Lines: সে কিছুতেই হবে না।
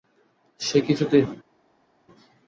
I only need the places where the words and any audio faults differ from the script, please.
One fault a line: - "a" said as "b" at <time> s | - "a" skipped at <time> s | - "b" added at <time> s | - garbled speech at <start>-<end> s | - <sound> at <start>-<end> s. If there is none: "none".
- "হবে" skipped at 1.2 s